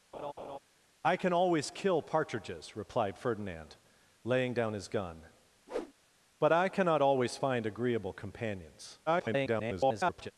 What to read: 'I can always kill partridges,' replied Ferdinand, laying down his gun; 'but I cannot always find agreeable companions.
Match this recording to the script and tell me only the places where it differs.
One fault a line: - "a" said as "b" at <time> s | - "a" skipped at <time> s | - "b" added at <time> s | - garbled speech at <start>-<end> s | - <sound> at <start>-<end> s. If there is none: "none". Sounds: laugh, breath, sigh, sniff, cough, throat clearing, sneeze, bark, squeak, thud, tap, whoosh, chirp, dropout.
- laugh at 0.1-0.6 s
- whoosh at 5.7-5.9 s
- garbled speech at 9.1-10.3 s